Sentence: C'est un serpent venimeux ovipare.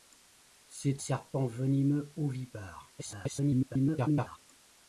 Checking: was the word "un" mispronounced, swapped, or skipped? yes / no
yes